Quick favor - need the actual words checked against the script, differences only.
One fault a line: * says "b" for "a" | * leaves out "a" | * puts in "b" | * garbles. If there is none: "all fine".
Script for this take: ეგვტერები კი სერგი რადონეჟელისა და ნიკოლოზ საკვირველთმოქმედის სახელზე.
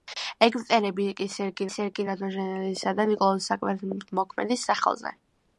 * puts in "სერგი"